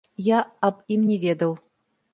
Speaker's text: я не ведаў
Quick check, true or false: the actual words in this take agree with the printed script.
false